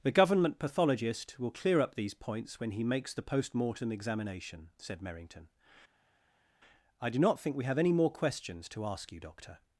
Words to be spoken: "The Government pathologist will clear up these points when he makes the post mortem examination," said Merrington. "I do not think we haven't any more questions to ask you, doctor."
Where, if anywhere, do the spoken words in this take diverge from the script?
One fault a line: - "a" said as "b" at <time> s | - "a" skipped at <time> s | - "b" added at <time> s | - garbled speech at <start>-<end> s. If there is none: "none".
- "haven't" said as "have" at 7.6 s